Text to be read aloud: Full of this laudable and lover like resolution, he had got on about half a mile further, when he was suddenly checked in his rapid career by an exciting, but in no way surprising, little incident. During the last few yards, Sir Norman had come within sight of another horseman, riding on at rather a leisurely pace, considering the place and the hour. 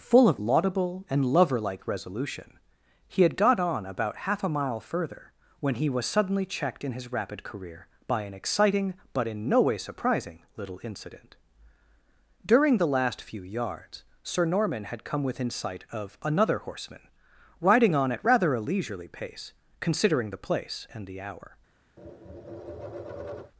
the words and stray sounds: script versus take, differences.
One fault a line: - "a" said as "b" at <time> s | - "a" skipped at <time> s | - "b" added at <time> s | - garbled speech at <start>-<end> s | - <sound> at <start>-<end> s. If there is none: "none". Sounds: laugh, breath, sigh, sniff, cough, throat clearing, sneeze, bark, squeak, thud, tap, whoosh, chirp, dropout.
- "this" skipped at 0.4 s
- tap at 22.0-23.5 s